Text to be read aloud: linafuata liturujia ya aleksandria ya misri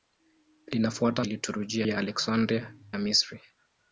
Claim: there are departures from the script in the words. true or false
false